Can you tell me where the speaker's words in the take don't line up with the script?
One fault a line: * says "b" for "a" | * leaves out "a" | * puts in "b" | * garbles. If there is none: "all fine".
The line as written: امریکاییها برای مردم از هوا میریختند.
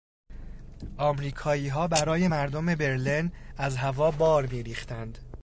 * puts in "برلن"
* puts in "بار"